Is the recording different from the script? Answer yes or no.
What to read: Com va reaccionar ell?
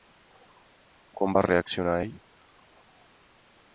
no